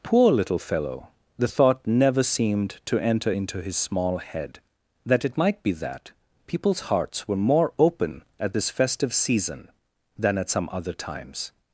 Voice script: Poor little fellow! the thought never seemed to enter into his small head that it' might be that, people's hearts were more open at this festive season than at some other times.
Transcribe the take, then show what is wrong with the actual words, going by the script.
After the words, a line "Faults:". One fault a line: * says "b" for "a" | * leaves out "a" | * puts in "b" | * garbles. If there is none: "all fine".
Poor little fellow! the thought never seemed to enter into his small head that it' might be that, people's hearts were more open at this festive season than at some other times.
Faults:
all fine